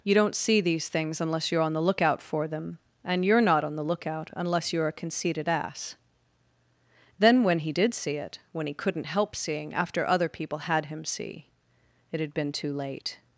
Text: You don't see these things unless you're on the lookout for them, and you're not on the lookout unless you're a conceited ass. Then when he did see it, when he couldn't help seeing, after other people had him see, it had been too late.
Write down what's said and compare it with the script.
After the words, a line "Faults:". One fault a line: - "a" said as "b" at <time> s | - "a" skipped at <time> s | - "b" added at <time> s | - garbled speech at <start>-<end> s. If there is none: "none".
You don't see these things unless you're on the lookout for them, and you're not on the lookout unless you're a conceited ass. Then when he did see it, when he couldn't help seeing, after other people had him see, it had been too late.
Faults:
none